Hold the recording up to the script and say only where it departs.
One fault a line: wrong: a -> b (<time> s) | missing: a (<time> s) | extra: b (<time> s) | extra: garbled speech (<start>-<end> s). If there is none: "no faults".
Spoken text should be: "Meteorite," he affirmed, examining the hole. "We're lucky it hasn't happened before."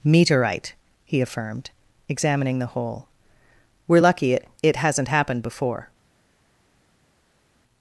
extra: it (4.6 s)